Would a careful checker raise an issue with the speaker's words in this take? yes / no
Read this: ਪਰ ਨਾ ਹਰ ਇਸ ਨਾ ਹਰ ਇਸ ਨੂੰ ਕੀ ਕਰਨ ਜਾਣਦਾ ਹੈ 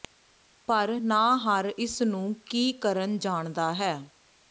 yes